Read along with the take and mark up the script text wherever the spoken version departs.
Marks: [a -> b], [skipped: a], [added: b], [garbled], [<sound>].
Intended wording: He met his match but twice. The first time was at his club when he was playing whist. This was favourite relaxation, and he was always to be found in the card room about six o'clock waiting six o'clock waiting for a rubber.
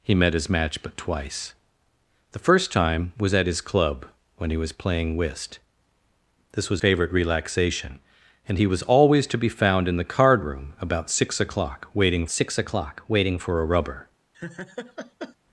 He met his match but twice. The first time was at his club when he was playing whist. This was favourite relaxation, and he was always to be found in the card room about six o'clock waiting six o'clock waiting for a rubber. [laugh]